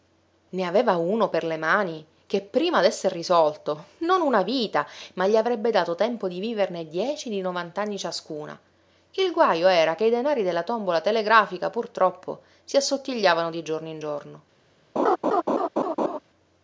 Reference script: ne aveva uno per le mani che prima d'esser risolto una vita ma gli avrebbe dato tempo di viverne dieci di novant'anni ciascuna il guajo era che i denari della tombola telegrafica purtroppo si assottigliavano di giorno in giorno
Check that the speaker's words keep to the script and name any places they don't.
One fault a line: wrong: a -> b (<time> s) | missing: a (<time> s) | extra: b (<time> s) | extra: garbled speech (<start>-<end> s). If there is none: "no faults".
extra: non (4.0 s)